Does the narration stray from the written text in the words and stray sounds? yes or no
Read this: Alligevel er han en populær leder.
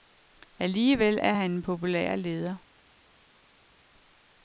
no